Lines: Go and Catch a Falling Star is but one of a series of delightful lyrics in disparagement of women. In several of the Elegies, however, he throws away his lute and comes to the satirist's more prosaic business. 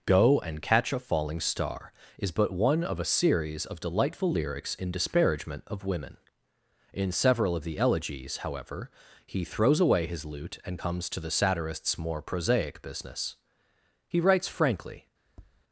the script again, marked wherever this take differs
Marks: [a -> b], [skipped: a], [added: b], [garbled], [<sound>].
Go and Catch a Falling Star is but one of a series of delightful lyrics in disparagement of women. In several of the Elegies, however, he throws away his lute and comes to the satirist's more prosaic business. [added: He writes frankly] [tap]